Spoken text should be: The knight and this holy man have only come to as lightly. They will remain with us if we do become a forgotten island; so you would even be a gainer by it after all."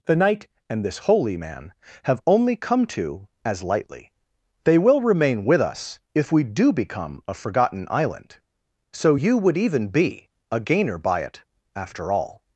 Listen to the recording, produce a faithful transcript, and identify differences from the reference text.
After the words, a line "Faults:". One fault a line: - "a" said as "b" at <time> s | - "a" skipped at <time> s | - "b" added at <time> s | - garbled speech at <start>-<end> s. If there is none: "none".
The knight and this holy man have only come to as lightly. They will remain with us if we do become a forgotten island; so you would even be a gainer by it after all."
Faults:
none